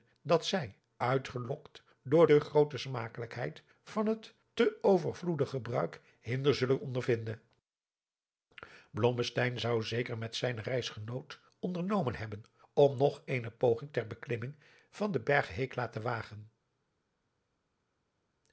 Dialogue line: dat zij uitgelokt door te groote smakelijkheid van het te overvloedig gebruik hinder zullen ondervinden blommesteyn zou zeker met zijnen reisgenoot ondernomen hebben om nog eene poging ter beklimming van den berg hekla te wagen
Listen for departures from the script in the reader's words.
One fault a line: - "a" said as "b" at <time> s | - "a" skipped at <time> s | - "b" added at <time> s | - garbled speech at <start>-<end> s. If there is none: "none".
none